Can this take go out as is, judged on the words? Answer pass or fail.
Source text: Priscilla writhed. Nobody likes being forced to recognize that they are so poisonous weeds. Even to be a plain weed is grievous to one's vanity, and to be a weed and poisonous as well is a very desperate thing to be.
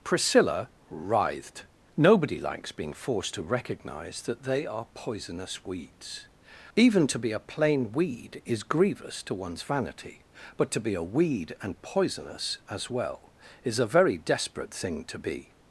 fail